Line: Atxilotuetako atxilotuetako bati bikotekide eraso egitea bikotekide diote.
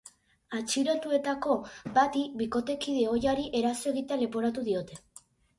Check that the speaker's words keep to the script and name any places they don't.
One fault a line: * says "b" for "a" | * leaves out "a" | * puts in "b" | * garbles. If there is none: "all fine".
* leaves out "atxilotuetako"
* puts in "ohiari"
* says "leporatu" for "bikotekide"